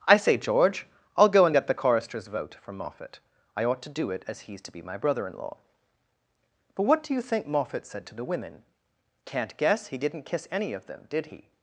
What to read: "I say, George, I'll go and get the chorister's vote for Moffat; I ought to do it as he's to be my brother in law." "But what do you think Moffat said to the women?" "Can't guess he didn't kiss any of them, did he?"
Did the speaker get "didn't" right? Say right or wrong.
right